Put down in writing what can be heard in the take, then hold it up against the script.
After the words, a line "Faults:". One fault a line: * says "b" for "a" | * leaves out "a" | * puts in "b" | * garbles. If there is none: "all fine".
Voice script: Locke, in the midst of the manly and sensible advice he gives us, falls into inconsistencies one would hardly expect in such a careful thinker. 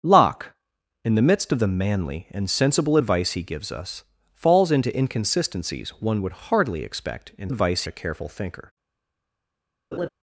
Locke, in the midst of the manly and sensible advice he gives us, falls into inconsistencies one would hardly expect in advice a careful thinker.
Faults:
* says "advice" for "such"